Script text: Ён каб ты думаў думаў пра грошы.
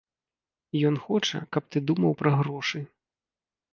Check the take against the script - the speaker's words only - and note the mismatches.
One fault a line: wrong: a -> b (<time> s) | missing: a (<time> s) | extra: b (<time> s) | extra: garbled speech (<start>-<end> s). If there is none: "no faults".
extra: хоча (1.1 s)
missing: думаў (2.1 s)